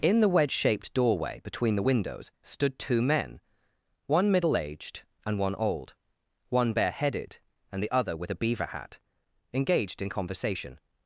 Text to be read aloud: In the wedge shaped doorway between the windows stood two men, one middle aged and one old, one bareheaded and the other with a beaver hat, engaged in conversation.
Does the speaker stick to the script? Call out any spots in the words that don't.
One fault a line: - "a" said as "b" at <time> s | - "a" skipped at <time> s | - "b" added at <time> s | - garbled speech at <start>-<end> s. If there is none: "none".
none